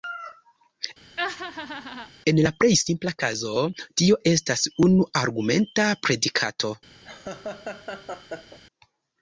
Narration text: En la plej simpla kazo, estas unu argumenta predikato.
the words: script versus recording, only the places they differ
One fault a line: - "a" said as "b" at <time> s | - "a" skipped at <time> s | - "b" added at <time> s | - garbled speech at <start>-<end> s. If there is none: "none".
- "tio" added at 4.0 s